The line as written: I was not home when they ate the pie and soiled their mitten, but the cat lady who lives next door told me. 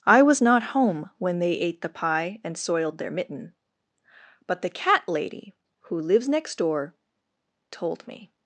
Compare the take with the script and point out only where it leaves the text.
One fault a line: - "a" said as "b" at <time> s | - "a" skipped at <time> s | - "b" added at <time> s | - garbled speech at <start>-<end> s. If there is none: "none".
none